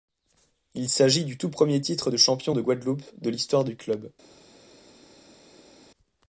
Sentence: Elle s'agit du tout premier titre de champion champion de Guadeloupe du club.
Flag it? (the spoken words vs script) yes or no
yes